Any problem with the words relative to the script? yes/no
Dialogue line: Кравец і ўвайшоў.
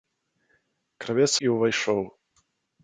no